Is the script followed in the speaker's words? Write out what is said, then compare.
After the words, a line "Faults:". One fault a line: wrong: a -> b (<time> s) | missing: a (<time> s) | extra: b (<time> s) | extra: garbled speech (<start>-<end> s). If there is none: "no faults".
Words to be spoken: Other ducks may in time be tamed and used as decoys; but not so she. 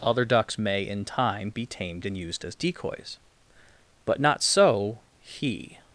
Other ducks may in time be tamed and used as decoys; but not so he.
Faults:
wrong: she -> he (5.2 s)